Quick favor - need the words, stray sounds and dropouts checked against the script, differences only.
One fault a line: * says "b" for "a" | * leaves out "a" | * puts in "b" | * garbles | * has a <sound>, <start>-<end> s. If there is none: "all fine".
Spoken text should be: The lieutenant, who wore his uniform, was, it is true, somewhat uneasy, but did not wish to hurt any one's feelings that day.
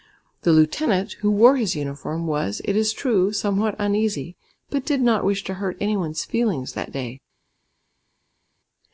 all fine